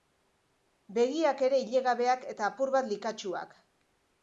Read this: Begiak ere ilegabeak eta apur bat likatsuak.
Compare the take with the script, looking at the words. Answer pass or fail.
pass